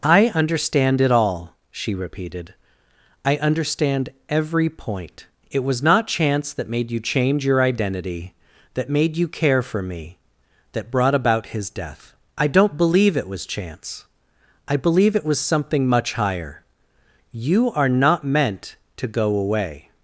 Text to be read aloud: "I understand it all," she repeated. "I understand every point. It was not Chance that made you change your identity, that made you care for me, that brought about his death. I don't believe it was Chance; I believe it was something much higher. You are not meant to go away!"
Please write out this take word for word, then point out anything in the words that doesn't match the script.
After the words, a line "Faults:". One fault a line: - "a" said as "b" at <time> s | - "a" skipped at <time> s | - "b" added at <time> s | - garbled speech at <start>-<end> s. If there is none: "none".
"I understand it all," she repeated. "I understand every point. It was not Chance that made you change your identity, that made you care for me, that brought about his death. I don't believe it was Chance; I believe it was something much higher. You are not meant to go away!"
Faults:
none